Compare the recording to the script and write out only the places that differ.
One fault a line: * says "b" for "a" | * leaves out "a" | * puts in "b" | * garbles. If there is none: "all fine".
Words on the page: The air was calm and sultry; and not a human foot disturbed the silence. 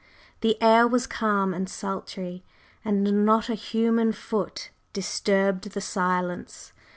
all fine